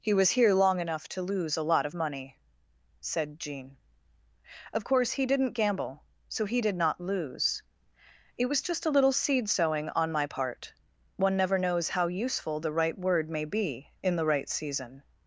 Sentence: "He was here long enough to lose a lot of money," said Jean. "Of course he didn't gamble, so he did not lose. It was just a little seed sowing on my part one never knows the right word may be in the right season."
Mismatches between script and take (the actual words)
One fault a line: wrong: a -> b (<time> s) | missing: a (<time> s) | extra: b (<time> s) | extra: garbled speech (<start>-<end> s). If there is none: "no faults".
extra: how useful (11.9 s)